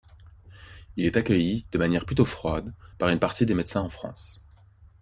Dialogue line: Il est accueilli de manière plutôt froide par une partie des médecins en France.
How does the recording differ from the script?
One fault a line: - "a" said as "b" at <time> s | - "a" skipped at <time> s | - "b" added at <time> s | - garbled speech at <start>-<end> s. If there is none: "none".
none